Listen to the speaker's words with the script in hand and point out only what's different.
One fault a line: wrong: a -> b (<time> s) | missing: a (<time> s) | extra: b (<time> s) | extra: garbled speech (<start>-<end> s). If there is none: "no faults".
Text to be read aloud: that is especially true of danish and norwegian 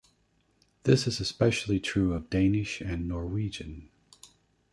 wrong: that -> this (0.8 s)